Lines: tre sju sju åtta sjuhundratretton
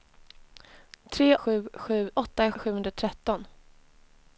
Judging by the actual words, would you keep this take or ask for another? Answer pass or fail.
pass